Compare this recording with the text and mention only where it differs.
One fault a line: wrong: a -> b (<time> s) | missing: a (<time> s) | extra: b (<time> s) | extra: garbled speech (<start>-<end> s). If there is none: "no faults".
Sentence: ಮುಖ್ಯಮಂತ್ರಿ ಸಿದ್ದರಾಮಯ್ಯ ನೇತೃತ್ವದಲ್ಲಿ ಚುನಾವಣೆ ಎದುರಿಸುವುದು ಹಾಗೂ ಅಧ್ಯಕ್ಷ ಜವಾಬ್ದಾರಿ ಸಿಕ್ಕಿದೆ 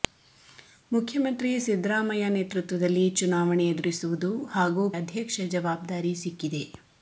no faults